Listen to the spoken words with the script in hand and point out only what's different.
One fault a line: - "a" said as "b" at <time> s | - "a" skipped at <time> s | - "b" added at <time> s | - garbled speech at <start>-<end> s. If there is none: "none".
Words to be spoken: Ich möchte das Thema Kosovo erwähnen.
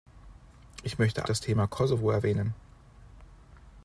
none